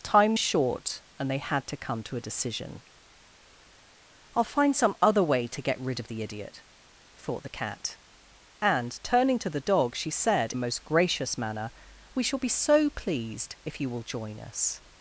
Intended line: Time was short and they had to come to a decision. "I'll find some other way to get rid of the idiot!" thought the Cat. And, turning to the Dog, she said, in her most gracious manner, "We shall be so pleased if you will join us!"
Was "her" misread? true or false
true